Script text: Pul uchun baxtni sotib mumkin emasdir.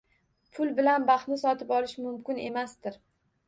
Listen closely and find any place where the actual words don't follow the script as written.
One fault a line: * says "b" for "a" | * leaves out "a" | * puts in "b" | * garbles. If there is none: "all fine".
* says "bilan" for "uchun"
* puts in "olish"